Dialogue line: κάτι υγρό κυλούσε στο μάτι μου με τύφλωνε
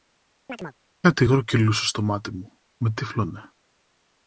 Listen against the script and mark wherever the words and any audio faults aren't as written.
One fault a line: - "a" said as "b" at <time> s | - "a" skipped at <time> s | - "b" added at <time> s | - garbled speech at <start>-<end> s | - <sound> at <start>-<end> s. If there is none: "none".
- chirp at 0.5-0.8 s